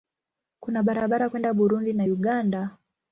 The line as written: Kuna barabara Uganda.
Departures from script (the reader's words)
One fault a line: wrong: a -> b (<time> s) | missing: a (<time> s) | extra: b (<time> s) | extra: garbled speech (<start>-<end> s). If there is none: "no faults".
extra: kwenda Burundi na (1.3 s)